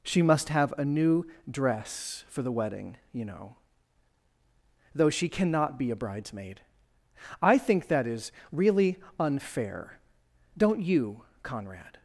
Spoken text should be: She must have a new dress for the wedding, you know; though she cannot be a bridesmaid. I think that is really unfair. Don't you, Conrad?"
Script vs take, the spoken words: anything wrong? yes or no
no